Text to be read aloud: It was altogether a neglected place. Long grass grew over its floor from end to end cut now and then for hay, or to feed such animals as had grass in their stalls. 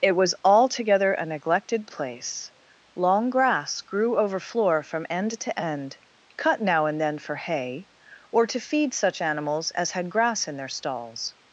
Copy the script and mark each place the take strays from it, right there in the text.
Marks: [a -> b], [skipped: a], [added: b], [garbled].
It was altogether a neglected place. Long grass grew over [skipped: its] floor from end to end cut now and then for hay, or to feed such animals as had grass in their stalls.